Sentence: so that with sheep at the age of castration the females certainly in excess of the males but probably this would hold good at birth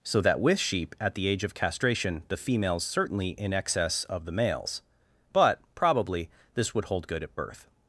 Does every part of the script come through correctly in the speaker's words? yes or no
yes